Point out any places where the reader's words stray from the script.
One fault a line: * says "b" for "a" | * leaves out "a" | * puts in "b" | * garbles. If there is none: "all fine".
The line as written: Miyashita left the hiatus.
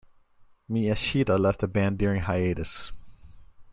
* puts in "band during"